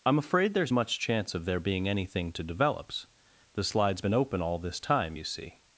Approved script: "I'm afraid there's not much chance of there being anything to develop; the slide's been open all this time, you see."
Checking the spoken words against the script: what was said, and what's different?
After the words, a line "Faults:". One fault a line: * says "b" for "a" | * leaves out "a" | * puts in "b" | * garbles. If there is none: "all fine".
"I'm afraid there's much chance of there being anything to develops; the slide's been open all this time, you see."
Faults:
* leaves out "not"
* says "develops" for "develop"